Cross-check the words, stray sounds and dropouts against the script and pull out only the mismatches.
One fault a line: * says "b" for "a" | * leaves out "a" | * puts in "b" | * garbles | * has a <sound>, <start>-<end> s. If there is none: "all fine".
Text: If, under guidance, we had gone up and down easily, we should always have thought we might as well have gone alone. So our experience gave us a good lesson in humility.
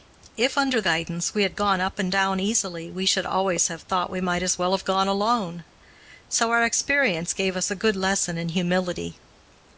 all fine